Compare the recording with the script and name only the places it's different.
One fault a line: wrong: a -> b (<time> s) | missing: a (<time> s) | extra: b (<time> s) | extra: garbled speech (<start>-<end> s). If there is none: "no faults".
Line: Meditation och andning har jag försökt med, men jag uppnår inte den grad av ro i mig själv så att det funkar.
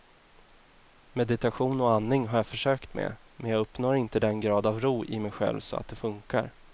no faults